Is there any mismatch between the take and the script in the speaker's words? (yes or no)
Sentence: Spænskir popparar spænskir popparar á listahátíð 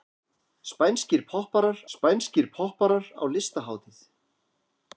no